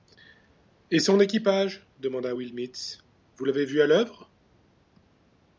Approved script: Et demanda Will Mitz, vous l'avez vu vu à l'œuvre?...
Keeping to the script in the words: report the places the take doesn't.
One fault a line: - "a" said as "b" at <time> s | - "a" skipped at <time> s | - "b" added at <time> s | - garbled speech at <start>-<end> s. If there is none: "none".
- "son équipage" added at 1.0 s
- "vu" skipped at 3.8 s